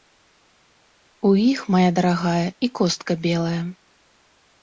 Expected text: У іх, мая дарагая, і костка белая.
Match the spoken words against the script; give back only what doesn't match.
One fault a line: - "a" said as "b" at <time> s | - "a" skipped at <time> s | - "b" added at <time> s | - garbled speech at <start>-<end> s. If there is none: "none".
none